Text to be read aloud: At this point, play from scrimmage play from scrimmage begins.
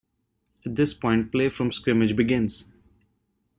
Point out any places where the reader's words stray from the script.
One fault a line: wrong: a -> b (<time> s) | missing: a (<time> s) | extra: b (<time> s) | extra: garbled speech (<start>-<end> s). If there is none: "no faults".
missing: play from scrimmage (2.1 s)